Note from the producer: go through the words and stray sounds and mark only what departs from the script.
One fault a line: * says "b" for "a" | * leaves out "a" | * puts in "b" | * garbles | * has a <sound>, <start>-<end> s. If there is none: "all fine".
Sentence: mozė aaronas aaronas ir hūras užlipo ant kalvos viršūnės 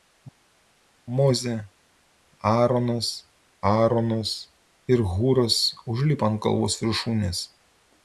all fine